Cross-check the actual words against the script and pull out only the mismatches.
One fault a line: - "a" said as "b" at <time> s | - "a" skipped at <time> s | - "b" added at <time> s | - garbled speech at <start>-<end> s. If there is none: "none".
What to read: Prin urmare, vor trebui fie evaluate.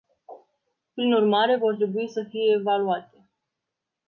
- "să" added at 2.1 s